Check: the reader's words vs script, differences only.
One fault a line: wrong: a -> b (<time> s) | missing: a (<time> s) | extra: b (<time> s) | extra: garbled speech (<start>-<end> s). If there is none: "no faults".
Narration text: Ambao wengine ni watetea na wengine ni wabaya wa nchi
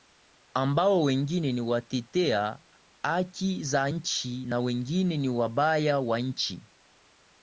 extra: haki za nchi (3.0 s)